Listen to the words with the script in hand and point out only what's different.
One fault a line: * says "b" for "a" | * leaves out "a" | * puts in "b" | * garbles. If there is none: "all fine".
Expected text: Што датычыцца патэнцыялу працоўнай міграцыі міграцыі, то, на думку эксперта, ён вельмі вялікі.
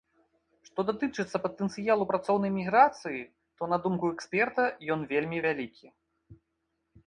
* leaves out "міграцыі"